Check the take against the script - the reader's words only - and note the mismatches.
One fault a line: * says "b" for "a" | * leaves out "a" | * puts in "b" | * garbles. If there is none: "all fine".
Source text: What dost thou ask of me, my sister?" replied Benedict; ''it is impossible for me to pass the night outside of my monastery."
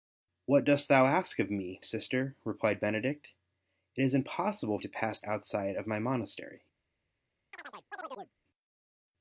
* leaves out "my"
* leaves out "for me"
* leaves out "the night"